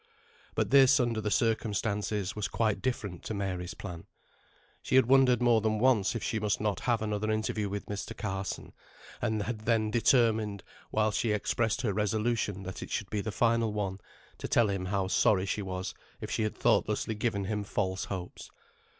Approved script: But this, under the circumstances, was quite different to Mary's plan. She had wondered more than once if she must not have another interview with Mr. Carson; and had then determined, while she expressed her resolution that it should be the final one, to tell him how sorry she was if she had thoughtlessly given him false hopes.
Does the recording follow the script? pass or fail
pass